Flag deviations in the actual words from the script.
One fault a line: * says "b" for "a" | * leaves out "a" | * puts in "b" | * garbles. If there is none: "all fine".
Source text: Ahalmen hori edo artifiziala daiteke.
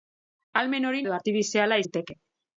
all fine